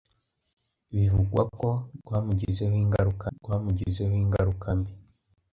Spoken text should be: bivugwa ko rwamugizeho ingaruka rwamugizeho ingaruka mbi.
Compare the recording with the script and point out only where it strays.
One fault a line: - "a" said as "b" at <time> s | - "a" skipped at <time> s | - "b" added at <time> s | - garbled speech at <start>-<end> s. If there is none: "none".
none